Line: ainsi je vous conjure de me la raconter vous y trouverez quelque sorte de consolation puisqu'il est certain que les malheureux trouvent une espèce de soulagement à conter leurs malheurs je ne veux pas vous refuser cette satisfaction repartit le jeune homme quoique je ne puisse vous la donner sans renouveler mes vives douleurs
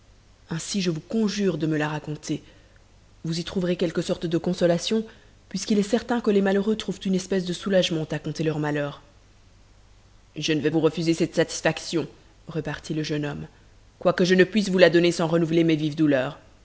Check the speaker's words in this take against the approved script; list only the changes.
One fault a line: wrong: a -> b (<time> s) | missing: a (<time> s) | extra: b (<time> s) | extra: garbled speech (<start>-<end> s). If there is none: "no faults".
missing: pas (10.7 s)